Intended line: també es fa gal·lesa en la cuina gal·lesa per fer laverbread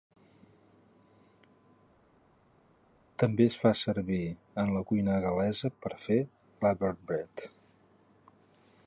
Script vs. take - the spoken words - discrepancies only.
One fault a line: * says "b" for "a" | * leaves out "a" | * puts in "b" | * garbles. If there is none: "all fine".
* says "servir" for "gal·lesa"